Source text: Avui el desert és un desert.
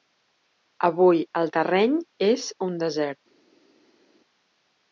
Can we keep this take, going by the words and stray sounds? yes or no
no